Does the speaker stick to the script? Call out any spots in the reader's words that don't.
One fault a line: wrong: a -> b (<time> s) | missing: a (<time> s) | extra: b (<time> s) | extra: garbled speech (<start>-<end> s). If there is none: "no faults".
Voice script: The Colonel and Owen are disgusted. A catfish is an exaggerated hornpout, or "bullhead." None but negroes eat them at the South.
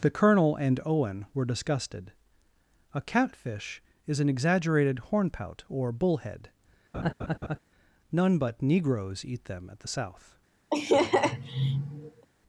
wrong: are -> were (1.3 s)